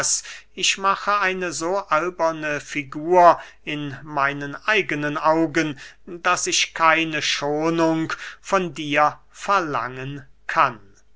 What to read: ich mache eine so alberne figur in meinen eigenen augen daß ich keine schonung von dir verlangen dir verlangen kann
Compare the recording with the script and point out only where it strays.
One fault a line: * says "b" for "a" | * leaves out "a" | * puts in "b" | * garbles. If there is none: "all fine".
* leaves out "dir verlangen"